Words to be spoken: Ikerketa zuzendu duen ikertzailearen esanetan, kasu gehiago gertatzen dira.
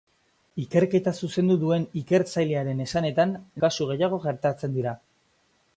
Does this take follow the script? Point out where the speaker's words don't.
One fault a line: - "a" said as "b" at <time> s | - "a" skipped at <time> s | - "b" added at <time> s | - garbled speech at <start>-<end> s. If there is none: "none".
none